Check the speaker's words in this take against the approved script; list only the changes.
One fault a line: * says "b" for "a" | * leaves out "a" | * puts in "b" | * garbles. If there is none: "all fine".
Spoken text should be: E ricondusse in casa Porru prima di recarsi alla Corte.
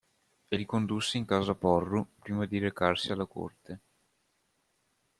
all fine